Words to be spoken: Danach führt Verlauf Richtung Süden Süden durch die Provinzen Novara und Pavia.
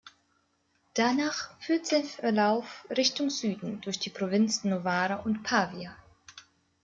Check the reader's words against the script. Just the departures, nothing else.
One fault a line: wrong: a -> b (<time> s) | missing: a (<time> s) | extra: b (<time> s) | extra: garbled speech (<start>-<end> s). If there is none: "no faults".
extra: sein (1.9 s)
missing: Süden (3.8 s)